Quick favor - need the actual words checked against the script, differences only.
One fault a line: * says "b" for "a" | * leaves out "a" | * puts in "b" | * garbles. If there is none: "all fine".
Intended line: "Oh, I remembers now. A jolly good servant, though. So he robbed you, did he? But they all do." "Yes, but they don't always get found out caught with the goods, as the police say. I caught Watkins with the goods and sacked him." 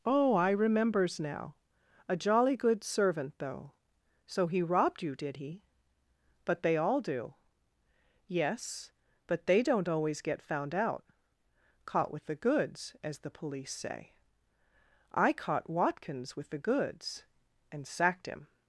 all fine